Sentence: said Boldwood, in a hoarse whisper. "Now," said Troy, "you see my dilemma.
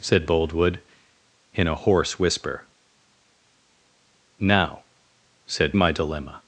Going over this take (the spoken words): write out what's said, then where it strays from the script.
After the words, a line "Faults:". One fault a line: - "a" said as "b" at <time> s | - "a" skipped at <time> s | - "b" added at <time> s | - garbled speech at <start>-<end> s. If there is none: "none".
said Boldwood, in a hoarse whisper. "Now," said My dilemma.
Faults:
- "Troy you see" skipped at 5.8 s